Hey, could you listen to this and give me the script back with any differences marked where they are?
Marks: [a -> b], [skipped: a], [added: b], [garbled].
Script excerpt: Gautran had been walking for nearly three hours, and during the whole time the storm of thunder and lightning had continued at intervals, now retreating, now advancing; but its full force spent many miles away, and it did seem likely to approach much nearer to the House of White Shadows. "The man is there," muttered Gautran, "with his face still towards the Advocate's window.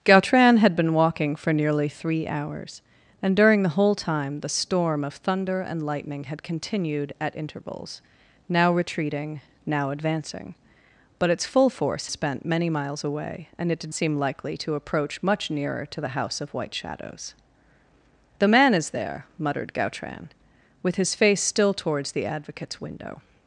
Gautran had been walking for nearly three hours, and during the whole time the storm of thunder and lightning had continued at intervals, now retreating, now advancing; but its full force spent many miles away, and it did seem likely to approach much nearer to the House of White Shadows. "The man is there," muttered Gautran, "with his face still towards the Advocate's window.